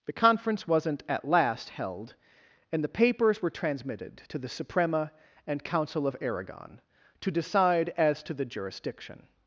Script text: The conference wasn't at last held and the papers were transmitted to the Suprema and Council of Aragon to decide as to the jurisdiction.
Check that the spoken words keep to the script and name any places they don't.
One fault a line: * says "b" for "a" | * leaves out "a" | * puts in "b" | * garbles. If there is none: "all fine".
all fine